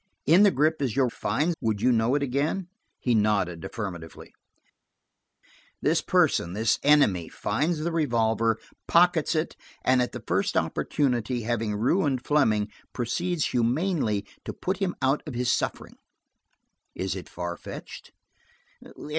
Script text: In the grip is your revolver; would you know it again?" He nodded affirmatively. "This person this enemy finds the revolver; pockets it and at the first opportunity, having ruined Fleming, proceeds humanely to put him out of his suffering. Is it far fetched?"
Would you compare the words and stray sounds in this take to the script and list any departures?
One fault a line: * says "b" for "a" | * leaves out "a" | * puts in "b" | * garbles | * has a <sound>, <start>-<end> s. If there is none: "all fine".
* says "finds" for "revolver"